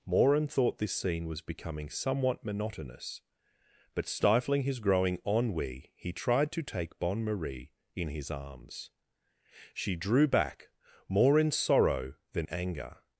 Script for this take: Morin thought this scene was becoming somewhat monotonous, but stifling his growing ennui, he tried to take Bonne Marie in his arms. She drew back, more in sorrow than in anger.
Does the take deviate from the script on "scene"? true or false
false